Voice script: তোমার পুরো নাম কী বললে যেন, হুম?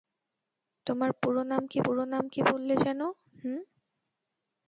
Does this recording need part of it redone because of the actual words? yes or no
yes